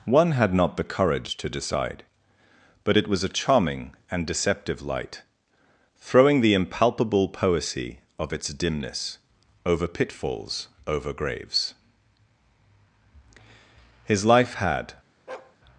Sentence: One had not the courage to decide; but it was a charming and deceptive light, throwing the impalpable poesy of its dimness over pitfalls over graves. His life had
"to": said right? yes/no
yes